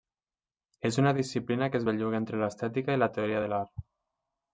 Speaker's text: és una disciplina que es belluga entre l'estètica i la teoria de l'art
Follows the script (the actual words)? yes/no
yes